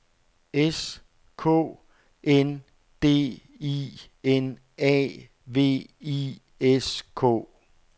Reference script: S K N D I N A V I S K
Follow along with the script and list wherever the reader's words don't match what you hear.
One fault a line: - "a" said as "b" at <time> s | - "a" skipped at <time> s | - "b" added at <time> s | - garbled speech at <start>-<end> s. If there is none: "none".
none